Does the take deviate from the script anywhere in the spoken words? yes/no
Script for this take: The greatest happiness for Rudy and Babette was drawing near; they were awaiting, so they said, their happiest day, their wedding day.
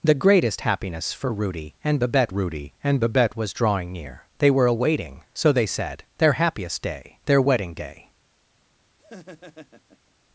yes